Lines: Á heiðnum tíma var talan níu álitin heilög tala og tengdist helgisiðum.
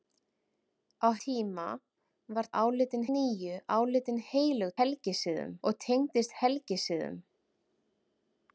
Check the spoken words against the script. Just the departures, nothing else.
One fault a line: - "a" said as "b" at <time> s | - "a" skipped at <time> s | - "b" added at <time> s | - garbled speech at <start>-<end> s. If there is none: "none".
- "heiðnum" skipped at 1.1 s
- "talan" said as "álitin" at 2.6 s
- "tala" said as "helgisiðum" at 4.8 s